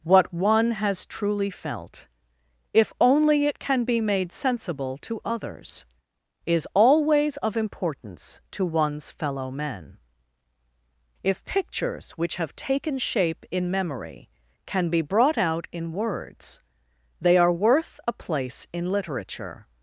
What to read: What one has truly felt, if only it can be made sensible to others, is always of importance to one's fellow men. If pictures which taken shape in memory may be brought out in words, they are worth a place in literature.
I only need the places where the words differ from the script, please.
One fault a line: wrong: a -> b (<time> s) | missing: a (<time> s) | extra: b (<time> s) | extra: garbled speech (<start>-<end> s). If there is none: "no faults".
extra: have (12.4 s)
wrong: may -> can (14.7 s)